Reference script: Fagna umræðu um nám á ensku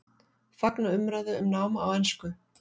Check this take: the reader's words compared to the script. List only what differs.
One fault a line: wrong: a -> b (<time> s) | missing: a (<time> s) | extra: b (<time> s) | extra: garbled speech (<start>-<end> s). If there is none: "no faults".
no faults